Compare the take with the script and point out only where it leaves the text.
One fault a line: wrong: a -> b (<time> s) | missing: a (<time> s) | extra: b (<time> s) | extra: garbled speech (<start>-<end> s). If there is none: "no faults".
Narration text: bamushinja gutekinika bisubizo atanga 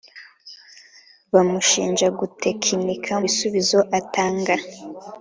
no faults